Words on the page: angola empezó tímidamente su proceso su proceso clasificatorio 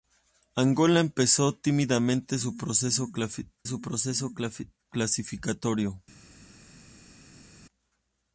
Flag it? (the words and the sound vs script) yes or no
no